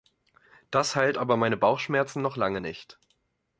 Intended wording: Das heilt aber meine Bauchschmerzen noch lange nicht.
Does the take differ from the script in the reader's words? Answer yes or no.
no